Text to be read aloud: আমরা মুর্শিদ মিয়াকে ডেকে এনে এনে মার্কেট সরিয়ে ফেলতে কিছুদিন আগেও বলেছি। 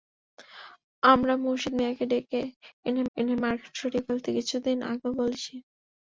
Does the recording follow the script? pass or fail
pass